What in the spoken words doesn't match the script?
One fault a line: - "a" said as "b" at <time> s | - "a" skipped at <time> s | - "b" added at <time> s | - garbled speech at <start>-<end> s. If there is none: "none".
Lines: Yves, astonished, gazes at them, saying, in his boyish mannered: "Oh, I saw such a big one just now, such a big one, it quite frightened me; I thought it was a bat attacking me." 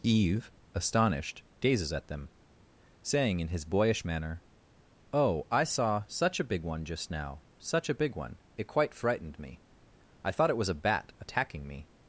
- "mannered" said as "manner" at 4.0 s